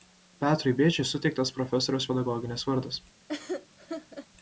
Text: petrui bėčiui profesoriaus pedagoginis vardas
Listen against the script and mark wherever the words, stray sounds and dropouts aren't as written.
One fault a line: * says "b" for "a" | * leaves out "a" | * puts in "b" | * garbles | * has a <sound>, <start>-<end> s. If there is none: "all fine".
* puts in "suteiktas"
* has a laugh, 3.3-4.3 s